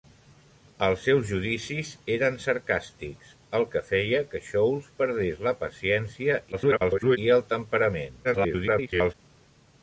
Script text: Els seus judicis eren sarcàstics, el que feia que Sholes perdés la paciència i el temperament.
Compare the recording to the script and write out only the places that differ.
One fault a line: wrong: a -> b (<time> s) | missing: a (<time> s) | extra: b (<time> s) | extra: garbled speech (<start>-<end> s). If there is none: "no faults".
extra: garbled speech (6.5-7.2 s)
extra: garbled speech (8.2-9.1 s)